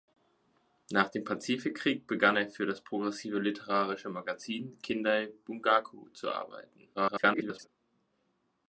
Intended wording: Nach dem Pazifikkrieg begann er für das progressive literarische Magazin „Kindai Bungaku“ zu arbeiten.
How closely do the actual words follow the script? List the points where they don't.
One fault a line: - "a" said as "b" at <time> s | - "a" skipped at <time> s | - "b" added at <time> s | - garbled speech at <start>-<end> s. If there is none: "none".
- garbled speech at 6.9-7.7 s